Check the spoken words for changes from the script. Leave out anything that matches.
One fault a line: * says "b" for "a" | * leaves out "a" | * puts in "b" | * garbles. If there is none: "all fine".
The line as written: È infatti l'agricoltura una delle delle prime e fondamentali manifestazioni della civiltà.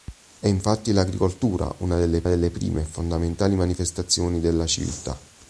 all fine